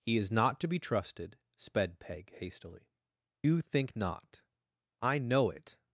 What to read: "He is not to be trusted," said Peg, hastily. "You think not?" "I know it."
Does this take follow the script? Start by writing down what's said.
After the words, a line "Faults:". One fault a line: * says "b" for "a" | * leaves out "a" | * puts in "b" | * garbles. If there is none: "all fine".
"He is not to be trusted," sped Peg, hastily. "You think not?" "I know it."
Faults:
* says "sped" for "said"